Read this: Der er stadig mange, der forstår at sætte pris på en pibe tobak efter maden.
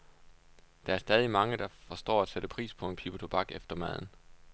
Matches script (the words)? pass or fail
pass